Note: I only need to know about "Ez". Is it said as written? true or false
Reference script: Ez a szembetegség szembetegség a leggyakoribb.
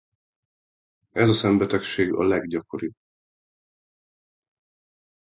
true